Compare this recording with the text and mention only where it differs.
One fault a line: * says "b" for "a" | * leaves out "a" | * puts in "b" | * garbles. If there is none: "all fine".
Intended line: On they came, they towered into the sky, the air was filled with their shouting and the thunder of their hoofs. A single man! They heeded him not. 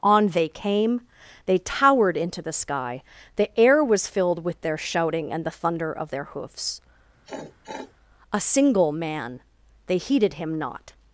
all fine